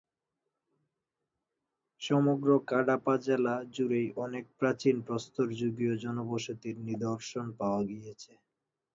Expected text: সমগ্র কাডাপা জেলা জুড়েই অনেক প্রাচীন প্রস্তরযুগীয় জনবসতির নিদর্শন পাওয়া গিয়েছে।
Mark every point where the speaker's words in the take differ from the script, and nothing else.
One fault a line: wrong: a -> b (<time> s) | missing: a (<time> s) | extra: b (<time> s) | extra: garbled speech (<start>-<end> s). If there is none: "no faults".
no faults